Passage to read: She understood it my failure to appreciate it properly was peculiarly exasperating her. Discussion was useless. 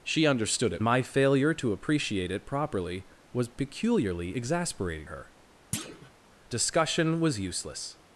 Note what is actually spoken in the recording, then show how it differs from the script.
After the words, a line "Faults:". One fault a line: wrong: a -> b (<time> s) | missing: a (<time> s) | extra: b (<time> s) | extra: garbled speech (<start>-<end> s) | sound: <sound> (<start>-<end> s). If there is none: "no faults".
She understood it my failure to appreciate it properly was peculiarly exasperating her. Discussion was useless.
Faults:
sound: thud (5.7-6.1 s)